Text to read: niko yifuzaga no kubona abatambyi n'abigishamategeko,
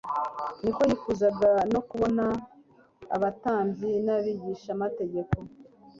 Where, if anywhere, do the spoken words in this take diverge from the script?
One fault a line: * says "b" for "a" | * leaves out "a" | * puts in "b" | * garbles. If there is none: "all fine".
all fine